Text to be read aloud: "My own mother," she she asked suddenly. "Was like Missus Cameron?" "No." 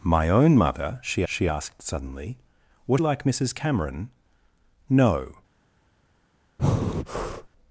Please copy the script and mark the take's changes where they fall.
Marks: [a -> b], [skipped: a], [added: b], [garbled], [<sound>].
"My own mother," she she asked suddenly. "Was like Missus Cameron?" "No." [breath]